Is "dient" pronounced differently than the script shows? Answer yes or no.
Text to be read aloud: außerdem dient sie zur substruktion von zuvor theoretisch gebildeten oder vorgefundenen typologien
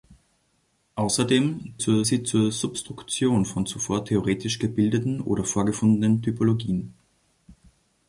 yes